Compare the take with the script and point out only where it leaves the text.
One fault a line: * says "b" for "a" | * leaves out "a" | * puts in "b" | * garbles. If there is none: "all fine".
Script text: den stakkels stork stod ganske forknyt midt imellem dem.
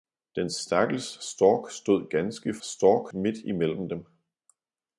* says "stork" for "forknyt"